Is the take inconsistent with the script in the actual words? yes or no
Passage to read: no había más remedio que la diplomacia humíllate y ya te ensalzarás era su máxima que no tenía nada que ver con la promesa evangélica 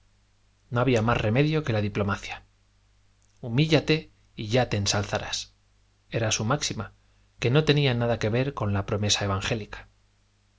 no